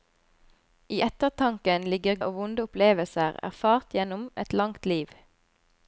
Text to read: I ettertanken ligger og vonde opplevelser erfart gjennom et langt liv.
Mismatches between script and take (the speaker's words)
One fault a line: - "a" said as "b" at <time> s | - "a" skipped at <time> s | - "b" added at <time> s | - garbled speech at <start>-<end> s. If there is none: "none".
none